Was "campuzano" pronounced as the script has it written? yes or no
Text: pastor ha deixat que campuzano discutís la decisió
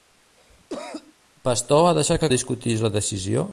no